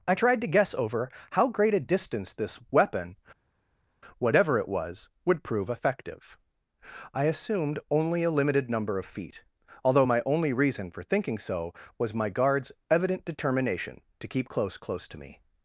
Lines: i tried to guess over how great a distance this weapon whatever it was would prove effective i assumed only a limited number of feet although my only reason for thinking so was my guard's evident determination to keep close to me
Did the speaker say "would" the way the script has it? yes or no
yes